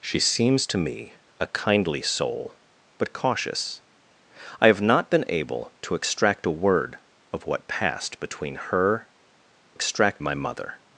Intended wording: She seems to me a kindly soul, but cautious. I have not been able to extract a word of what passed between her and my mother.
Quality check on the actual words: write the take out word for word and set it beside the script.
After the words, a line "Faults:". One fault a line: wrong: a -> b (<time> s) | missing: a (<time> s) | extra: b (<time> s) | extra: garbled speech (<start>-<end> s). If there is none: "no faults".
She seems to me a kindly soul, but cautious. I have not been able to extract a word of what passed between her extract my mother.
Faults:
wrong: and -> extract (9.7 s)